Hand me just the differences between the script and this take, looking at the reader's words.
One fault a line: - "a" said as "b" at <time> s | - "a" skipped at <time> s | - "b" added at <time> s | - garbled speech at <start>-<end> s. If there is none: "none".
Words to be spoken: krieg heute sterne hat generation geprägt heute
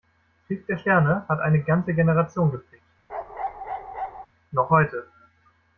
- "heute" said as "der" at 0.7 s
- "eine ganze" added at 1.4 s
- "noch" added at 4.5 s